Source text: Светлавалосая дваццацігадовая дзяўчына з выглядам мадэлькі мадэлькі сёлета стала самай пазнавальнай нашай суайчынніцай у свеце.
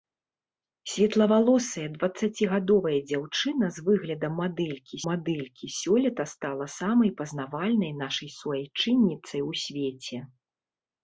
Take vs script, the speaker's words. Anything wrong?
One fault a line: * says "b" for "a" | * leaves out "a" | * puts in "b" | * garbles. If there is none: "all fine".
all fine